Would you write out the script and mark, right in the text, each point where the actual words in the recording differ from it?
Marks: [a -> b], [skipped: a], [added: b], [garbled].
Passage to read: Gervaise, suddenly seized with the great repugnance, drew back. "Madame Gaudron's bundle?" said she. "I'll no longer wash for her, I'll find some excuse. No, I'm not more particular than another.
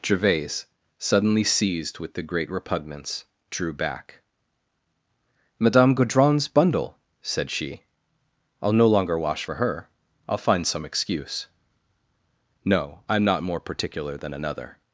Gervaise, suddenly seized with the great repugnance, drew back. "Madame Gaudron's bundle?" said she. "I'll no longer wash for her, I'll find some excuse. No, I'm not more particular than another.